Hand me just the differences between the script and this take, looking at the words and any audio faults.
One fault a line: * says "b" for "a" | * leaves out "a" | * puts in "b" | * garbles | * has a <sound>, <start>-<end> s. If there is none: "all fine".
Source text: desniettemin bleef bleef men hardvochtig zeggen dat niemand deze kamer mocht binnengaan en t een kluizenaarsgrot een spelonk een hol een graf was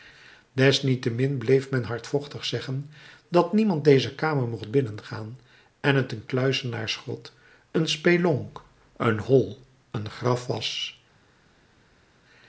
* leaves out "bleef"